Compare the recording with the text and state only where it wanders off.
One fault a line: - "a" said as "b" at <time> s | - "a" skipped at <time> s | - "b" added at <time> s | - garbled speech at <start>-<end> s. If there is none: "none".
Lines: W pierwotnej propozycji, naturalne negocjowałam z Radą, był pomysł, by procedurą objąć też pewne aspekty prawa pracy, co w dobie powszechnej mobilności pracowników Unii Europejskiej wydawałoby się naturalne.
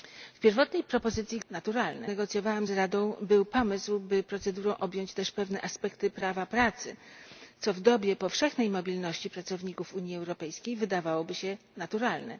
none